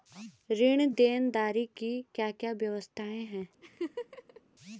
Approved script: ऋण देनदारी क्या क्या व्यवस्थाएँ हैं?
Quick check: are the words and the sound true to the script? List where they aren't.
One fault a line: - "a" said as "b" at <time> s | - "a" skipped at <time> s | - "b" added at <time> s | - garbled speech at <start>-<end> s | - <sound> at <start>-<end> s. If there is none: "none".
- "की" added at 1.8 s
- laugh at 3.6-4.4 s